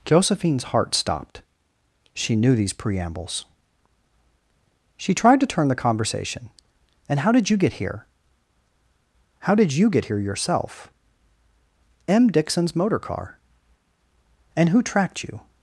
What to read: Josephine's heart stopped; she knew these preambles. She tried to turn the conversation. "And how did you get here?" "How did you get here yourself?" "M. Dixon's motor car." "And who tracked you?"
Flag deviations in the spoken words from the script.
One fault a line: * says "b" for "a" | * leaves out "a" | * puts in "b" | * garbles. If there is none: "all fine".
all fine